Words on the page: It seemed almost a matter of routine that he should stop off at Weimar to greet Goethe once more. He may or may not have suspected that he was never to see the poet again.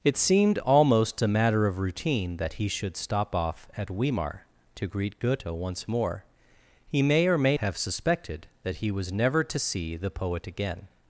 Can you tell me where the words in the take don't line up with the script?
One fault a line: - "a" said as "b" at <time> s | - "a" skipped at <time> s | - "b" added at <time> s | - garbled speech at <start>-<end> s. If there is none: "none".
- "not" skipped at 7.6 s